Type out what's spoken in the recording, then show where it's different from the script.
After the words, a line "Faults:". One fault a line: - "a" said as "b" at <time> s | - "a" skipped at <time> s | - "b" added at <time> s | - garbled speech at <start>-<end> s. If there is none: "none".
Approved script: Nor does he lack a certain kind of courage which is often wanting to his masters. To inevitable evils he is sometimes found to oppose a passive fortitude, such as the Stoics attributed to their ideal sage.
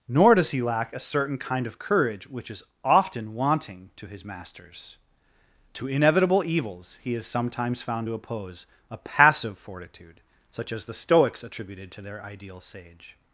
Nor does he lack a certain kind of courage which is often wanting to his masters. To inevitable evils he is sometimes found to oppose a passive fortitude, such as the Stoics attributed to their ideal sage.
Faults:
none